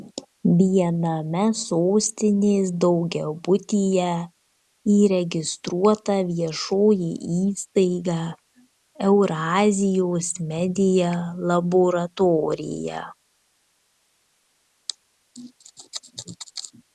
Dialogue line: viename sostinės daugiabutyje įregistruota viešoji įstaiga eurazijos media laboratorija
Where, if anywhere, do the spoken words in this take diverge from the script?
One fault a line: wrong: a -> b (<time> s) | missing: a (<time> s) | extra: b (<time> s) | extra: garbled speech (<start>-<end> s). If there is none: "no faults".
no faults